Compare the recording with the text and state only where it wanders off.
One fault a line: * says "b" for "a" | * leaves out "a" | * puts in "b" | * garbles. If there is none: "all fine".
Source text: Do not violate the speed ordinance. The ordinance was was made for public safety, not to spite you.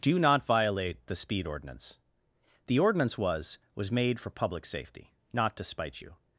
all fine